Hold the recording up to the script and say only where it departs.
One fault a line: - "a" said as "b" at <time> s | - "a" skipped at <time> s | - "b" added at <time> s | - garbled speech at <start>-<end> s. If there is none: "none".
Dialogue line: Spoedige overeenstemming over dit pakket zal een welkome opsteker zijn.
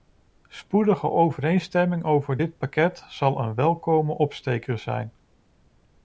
none